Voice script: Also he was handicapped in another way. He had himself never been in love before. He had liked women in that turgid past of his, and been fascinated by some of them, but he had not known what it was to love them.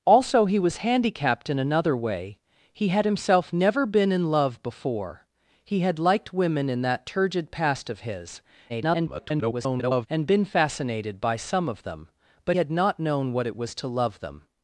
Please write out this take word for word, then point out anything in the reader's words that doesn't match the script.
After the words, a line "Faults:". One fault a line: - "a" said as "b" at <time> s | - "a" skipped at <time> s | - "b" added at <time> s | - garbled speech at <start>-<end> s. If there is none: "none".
Also he was handicapped in another way. He had himself never been in love before. He had liked women in that turgid past of his, [garbled] and been fascinated by some of them, but had not known what it was to love them.
Faults:
- garbled speech at 8.7-10.1 s
- "he" skipped at 12.6 s